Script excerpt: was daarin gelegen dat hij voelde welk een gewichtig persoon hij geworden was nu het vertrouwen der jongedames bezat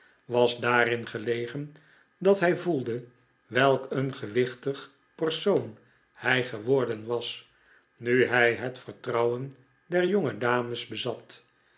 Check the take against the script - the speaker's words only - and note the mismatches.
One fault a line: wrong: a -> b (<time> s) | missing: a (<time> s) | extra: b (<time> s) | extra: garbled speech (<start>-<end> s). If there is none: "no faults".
extra: hij (8.2 s)